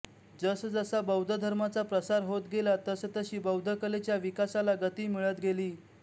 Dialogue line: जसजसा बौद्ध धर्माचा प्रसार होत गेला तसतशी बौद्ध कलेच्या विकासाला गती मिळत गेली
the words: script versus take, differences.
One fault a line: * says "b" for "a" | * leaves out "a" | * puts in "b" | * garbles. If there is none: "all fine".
all fine